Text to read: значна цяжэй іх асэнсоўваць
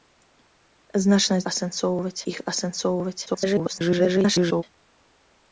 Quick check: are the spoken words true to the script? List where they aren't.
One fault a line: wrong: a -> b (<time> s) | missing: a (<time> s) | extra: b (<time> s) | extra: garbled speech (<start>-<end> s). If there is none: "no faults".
wrong: цяжэй -> асэнсоўваць (1.5 s)
extra: garbled speech (3.3-4.6 s)